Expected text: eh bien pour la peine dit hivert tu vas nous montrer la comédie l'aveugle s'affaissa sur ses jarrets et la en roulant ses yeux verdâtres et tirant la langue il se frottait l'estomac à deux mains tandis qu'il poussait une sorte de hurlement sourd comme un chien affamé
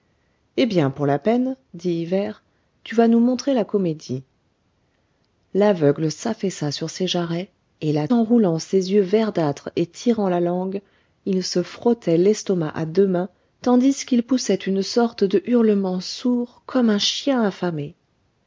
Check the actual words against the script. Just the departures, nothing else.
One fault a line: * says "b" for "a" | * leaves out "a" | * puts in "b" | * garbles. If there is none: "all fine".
all fine